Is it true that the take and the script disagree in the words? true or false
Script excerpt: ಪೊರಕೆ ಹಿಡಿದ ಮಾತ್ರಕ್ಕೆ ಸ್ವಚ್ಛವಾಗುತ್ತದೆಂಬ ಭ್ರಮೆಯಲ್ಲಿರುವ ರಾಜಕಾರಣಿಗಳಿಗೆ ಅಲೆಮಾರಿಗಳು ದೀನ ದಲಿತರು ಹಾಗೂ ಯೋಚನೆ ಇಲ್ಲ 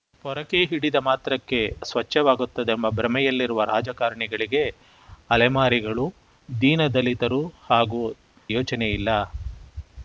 false